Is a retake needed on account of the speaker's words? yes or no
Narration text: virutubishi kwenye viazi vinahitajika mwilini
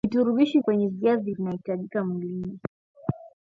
no